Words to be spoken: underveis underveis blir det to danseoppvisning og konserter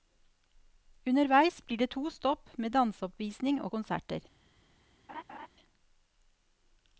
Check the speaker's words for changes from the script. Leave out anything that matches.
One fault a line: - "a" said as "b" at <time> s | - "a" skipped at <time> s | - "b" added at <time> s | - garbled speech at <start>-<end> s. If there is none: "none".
- "underveis" skipped at 1.6 s
- "stopp med" added at 2.1 s